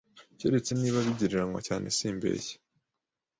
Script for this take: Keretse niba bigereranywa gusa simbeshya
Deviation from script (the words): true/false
true